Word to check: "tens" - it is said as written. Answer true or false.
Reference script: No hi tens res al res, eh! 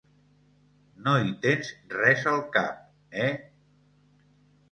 true